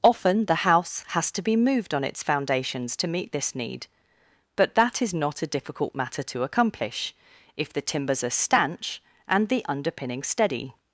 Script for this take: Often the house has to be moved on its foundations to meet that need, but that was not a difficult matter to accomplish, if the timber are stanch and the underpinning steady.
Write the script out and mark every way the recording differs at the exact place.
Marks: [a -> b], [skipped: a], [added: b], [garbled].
Often the house has to be moved on its foundations to meet [that -> this] need, but that [was -> is] not a difficult matter to accomplish, if the [timber -> timbers] are stanch and the underpinning steady.